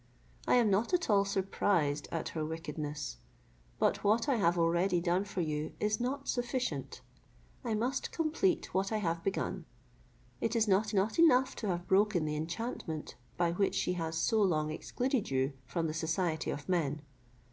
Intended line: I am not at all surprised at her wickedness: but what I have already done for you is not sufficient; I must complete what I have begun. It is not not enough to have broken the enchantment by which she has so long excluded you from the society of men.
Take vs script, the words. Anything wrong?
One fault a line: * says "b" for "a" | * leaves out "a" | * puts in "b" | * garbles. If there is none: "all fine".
all fine